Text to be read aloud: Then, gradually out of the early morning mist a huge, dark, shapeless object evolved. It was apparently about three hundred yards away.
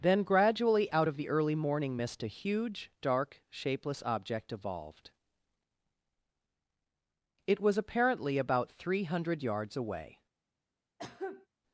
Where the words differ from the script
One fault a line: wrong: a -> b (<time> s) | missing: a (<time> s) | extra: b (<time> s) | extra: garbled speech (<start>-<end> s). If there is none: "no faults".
no faults